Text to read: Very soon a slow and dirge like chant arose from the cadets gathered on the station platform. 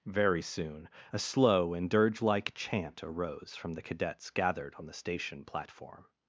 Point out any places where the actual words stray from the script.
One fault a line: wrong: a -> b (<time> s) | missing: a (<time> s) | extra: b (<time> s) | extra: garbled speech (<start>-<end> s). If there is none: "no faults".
no faults